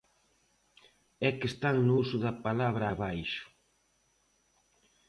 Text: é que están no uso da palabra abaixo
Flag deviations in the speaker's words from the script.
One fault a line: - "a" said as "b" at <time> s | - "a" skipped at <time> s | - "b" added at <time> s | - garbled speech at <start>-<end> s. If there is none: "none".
none